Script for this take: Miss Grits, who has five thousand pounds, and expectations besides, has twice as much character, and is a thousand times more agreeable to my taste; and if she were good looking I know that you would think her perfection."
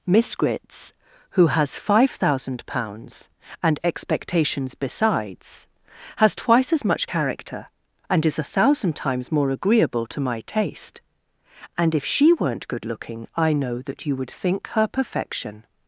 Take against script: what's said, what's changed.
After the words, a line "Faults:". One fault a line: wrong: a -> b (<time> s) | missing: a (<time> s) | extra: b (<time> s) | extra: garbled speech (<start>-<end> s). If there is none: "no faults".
Miss Grits, who has five thousand pounds, and expectations besides, has twice as much character, and is a thousand times more agreeable to my taste; and if she weren't good looking I know that you would think her perfection."
Faults:
wrong: were -> weren't (12.3 s)